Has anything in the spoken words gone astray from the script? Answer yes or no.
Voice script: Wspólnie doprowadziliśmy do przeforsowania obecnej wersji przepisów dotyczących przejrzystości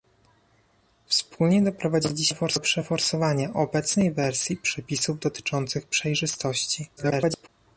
yes